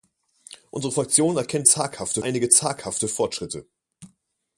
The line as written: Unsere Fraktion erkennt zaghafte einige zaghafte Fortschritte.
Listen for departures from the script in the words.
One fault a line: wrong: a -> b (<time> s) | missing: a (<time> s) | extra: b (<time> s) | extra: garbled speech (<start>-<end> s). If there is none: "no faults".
no faults